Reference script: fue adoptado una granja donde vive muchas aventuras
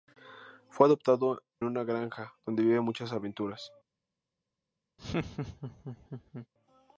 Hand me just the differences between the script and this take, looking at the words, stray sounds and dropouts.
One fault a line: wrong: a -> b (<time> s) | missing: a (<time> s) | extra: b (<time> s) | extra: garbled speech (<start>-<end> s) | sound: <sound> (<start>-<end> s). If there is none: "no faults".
sound: laugh (5.0-6.5 s)